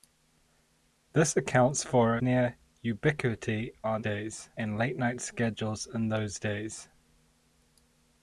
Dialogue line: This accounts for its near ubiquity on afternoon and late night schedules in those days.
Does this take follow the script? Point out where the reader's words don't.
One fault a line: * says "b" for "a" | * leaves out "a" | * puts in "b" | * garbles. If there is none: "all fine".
* leaves out "its"
* says "days" for "afternoon"